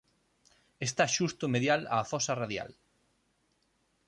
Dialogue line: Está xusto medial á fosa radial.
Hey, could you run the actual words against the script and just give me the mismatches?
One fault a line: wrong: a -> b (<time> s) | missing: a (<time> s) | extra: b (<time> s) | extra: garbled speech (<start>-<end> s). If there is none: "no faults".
no faults